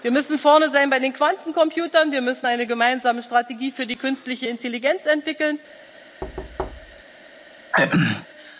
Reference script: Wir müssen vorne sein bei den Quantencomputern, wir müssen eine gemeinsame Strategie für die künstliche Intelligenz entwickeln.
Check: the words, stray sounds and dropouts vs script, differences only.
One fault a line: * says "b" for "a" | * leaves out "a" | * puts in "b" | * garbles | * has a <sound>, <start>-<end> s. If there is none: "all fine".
* has a thud, 6.2-7.0 s
* has a throat clearing, 7.7-8.3 s